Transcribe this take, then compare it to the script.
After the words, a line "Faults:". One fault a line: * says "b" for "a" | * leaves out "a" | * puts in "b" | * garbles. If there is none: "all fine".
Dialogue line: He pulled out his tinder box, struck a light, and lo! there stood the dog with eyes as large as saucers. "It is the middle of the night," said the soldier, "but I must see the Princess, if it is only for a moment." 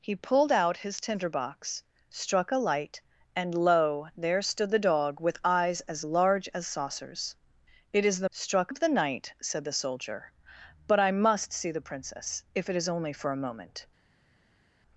He pulled out his tinder box, struck a light, and lo! there stood the dog with eyes as large as saucers. "It is the struck of the night," said the soldier, "but I must see the Princess, if it is only for a moment."
Faults:
* says "struck" for "middle"